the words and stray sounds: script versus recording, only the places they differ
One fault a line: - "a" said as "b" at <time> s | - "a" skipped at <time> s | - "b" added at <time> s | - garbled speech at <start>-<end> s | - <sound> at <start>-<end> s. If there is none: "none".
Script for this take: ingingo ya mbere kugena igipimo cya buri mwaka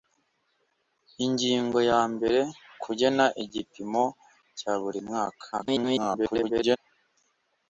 - garbled speech at 5.5-6.8 s